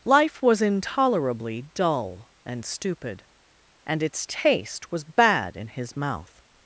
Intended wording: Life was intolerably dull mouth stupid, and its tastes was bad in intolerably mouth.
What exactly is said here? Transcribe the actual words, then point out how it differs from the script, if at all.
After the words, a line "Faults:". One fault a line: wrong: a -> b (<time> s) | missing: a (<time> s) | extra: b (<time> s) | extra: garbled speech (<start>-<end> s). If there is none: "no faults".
Life was intolerably dull and stupid, and its taste was bad in his mouth.
Faults:
wrong: mouth -> and (2.4 s)
wrong: tastes -> taste (4.3 s)
wrong: intolerably -> his (5.7 s)